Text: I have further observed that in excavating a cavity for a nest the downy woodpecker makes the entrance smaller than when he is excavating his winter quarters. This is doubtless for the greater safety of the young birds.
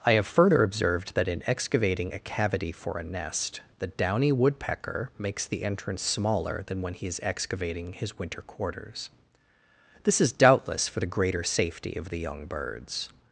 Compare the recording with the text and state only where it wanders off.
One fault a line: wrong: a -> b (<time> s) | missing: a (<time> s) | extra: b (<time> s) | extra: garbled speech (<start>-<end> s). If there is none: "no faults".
no faults